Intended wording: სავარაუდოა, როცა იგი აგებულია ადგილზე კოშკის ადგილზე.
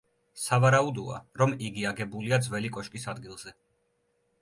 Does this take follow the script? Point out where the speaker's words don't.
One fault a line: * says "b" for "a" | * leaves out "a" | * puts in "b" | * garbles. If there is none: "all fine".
* says "რომ" for "როცა"
* says "ძველი" for "ადგილზე"